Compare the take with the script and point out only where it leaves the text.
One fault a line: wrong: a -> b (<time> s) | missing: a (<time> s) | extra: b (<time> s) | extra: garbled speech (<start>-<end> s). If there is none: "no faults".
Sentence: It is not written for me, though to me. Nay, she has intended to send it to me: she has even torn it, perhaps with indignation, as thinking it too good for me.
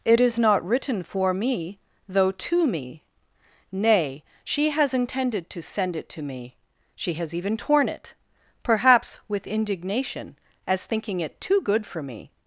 no faults